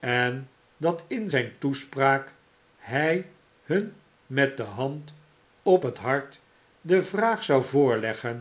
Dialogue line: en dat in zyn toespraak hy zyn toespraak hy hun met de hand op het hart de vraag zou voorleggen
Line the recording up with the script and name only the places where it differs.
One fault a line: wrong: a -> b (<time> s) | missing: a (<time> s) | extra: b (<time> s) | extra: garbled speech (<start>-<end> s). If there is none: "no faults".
missing: zyn toespraak hy (3.2 s)